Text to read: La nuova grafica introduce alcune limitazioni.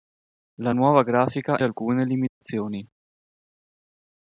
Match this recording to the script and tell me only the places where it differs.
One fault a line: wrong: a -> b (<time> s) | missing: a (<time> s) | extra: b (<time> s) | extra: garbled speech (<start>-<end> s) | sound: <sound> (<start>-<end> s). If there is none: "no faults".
missing: introduce (1.6 s)
sound: dropout (2.3-2.4 s)